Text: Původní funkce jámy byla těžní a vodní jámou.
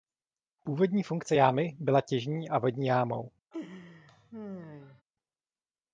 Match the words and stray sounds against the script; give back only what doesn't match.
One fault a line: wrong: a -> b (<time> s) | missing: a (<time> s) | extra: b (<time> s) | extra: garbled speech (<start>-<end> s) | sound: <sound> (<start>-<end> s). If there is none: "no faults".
sound: laugh (3.5-5.0 s)